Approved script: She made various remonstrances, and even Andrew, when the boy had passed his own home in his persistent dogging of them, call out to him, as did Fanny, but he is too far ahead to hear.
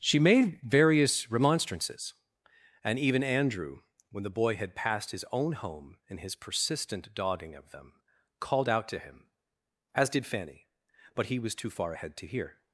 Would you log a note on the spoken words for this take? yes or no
yes